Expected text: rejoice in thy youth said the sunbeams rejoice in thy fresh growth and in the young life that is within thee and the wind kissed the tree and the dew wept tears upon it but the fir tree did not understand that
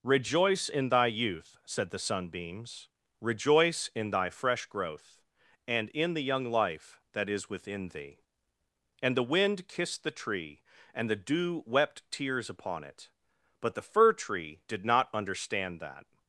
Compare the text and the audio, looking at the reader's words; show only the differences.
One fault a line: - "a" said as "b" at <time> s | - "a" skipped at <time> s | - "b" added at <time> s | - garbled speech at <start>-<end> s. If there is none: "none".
none